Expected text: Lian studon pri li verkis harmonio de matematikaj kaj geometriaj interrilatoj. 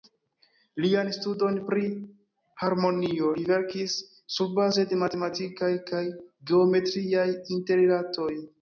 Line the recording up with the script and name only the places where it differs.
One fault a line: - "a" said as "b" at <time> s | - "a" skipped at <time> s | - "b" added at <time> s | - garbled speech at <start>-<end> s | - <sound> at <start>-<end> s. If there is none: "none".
- "harmonio" added at 2.6 s
- "harmonio" said as "surbaze" at 4.4 s